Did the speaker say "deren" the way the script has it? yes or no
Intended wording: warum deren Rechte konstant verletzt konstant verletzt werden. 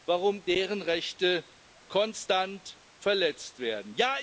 yes